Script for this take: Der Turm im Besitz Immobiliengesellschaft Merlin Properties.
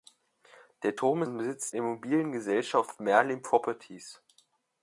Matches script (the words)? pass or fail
pass